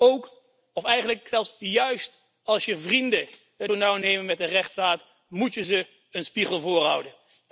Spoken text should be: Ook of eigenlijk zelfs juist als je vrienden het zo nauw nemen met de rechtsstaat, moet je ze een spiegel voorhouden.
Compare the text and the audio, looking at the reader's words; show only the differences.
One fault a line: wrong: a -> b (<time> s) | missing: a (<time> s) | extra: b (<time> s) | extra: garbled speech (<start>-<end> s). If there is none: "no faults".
no faults